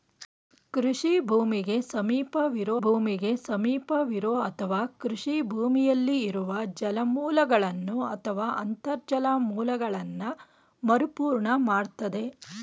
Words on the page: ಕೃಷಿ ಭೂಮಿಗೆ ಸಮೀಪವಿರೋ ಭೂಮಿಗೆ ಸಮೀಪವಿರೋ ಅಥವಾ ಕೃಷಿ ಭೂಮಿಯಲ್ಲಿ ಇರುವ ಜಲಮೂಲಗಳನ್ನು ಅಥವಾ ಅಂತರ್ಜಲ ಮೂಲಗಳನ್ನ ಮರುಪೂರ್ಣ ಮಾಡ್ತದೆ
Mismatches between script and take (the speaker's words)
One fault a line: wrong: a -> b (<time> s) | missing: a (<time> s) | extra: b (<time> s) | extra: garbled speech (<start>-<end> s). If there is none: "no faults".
no faults